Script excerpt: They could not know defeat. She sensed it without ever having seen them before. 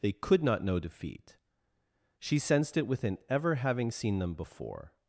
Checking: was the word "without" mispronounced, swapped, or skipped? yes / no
yes